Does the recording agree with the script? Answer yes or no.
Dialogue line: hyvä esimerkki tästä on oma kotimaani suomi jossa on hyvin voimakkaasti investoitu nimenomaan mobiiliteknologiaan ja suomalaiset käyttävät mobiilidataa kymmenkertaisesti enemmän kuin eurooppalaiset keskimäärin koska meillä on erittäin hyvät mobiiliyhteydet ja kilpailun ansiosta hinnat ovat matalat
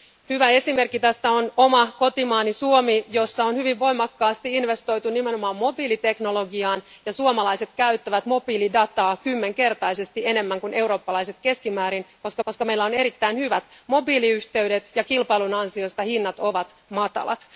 no